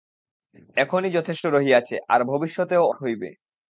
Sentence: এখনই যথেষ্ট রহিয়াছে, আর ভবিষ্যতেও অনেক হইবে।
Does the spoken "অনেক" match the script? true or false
false